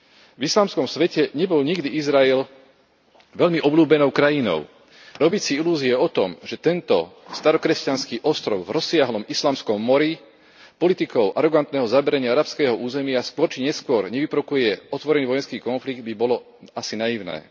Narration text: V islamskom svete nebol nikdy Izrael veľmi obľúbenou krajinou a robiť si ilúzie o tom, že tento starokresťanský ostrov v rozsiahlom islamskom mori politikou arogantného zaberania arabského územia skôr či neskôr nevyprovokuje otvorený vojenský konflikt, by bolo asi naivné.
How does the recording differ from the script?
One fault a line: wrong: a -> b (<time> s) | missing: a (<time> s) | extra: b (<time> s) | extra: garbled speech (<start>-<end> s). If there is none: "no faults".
missing: a (4.7 s)